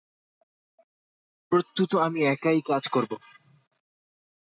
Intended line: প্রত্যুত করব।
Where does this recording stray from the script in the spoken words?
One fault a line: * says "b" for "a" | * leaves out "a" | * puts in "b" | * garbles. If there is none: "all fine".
* puts in "আমি একাই কাজ"